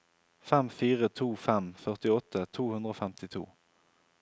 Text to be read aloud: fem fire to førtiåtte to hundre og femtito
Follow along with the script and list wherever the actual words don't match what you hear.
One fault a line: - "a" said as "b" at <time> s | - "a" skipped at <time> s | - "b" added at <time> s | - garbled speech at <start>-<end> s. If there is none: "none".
- "fem" added at 1.5 s